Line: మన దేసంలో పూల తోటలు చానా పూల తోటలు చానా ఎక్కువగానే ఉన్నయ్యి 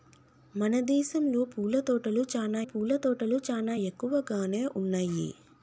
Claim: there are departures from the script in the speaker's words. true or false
false